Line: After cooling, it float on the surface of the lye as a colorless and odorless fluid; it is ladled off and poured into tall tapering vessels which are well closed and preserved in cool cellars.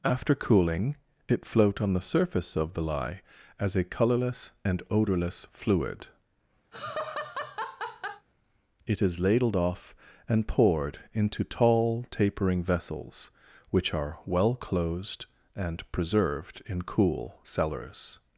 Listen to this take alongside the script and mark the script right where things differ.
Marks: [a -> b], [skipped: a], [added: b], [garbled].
After cooling, it float on the surface of the lye as a colorless and odorless fluid; it is ladled off and poured into tall tapering vessels which are well closed and preserved in cool cellars.